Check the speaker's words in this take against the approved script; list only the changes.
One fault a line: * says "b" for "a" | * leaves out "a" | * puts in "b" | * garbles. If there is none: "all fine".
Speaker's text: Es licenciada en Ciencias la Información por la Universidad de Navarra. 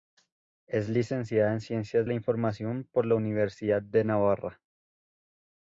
all fine